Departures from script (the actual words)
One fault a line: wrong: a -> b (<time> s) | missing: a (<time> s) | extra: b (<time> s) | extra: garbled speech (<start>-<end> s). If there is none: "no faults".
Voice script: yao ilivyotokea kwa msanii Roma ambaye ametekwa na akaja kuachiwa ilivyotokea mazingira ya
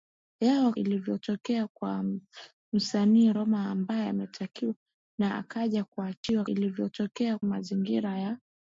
no faults